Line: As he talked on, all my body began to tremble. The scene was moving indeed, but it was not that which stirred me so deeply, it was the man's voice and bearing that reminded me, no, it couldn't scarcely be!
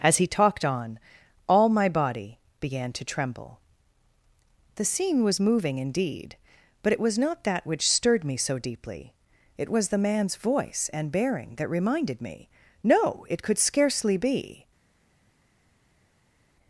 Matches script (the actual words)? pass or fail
fail